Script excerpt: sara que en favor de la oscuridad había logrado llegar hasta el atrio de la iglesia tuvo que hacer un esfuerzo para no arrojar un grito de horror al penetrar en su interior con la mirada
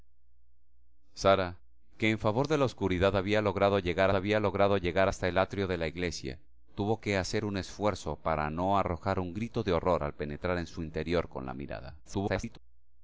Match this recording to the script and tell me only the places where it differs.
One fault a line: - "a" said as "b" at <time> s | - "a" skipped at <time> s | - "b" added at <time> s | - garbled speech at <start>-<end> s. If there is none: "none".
- "había logrado llegar" added at 4.1 s
- garbled speech at 12.0-12.6 s